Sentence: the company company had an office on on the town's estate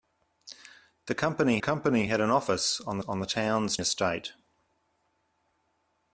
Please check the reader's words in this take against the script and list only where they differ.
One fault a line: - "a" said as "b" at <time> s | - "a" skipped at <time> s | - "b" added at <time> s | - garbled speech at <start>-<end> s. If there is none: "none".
none